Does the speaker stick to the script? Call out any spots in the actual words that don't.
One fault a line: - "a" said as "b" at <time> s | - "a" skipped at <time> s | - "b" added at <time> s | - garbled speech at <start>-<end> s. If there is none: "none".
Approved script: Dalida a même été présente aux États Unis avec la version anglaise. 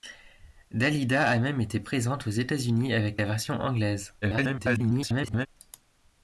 - garbled speech at 4.2-5.5 s